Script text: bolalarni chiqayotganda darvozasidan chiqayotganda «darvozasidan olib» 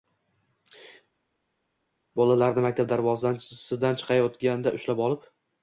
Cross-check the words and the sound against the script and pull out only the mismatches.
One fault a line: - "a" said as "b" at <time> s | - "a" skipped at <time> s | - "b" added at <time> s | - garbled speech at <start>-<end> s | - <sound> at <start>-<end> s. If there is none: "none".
- "chiqayotganda" said as "maktab" at 2.7 s
- "darvozasidan" said as "ushlab" at 4.8 s